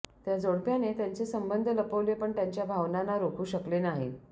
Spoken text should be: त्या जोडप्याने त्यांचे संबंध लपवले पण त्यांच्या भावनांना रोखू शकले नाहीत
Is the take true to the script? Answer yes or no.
yes